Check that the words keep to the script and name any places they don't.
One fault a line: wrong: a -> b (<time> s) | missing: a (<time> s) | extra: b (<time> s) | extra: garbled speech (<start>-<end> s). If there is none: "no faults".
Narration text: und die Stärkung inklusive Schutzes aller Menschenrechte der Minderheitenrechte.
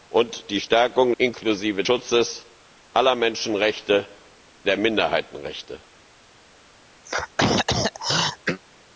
no faults